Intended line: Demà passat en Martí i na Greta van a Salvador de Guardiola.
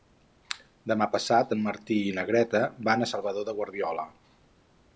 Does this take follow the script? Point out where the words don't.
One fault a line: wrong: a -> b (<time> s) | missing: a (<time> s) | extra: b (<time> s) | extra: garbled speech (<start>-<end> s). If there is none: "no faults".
no faults